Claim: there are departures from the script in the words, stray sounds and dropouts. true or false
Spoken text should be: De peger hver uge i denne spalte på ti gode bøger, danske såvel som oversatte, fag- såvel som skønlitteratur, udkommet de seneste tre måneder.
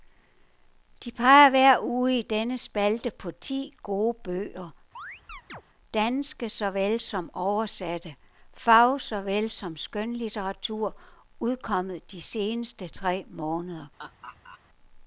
true